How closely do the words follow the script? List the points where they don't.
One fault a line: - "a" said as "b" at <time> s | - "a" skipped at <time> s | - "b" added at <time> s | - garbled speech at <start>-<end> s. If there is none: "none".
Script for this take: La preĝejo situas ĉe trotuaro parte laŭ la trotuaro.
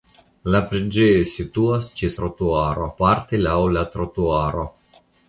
none